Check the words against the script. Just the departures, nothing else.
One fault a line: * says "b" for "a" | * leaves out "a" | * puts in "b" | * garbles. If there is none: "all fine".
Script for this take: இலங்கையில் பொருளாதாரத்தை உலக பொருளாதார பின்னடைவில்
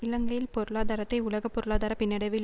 all fine